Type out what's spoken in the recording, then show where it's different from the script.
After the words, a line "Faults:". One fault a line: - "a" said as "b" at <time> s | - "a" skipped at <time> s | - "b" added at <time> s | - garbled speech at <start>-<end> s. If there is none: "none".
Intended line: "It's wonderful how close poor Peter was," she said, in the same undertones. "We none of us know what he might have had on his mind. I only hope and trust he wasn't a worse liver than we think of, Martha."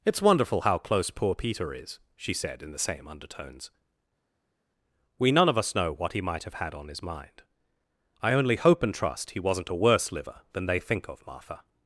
"It's wonderful how close poor Peter is," she said, in the same undertones. "We none of us know what he might have had on his mind. I only hope and trust he wasn't a worse liver than they think of, Martha."
Faults:
- "was" said as "is" at 1.7 s
- "we" said as "they" at 10.7 s